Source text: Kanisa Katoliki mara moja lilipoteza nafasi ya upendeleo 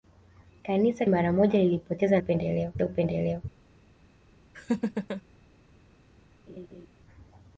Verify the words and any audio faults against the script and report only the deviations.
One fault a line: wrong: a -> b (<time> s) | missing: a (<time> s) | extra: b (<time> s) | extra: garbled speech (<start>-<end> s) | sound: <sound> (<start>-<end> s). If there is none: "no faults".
missing: Katoliki (1.1 s)
wrong: nafasi -> upendeleo (2.2 s)
sound: laugh (4.5-5.2 s)
sound: laugh (6.5-6.9 s)